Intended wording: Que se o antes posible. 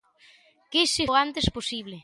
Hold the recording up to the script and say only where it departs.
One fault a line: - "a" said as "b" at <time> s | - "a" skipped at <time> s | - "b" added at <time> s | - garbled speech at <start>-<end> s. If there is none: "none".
none